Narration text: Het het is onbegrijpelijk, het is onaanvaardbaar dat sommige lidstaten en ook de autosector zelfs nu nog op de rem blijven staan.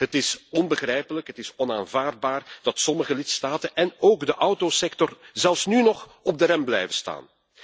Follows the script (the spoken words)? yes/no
yes